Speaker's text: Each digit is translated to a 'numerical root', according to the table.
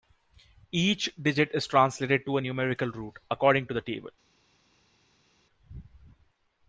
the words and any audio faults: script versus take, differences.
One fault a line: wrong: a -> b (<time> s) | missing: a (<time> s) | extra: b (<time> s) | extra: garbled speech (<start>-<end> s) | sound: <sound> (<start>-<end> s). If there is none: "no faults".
no faults